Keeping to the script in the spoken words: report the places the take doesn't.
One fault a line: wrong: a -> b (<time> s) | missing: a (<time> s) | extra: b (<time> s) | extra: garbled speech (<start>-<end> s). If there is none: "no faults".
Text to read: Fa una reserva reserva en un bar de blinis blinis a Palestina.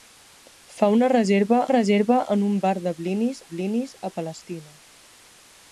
no faults